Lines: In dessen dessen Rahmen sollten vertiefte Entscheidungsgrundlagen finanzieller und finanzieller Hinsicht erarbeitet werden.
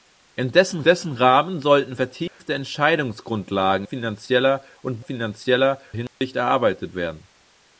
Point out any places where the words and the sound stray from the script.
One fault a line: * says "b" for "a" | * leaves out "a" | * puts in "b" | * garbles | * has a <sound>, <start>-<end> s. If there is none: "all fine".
* has a dropout, 2.3-2.4 s
* has a dropout, 6.1-6.2 s